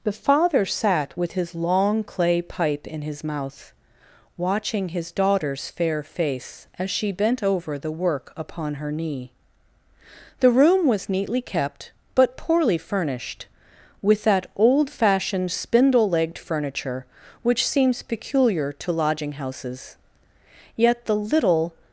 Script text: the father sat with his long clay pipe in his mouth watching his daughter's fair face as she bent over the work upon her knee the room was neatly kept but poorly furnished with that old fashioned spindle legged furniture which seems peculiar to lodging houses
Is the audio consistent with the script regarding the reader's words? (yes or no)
no